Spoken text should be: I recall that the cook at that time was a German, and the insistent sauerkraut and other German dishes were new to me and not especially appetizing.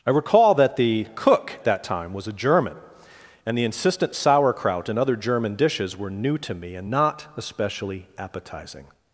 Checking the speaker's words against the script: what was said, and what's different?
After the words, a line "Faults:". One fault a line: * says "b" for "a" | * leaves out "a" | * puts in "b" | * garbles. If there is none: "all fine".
I recall that the cook that time was a German, and the insistent sauerkraut and other German dishes were new to me and not especially appetizing.
Faults:
* leaves out "at"